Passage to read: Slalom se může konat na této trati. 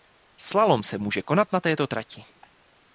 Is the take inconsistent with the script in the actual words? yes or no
no